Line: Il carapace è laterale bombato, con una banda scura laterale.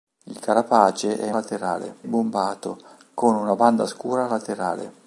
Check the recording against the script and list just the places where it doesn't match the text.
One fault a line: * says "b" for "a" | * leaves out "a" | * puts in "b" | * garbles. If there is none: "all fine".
all fine